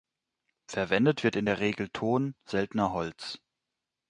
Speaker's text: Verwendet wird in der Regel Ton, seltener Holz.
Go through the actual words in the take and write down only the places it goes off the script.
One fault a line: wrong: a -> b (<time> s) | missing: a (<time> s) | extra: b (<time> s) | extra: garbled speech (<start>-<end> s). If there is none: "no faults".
no faults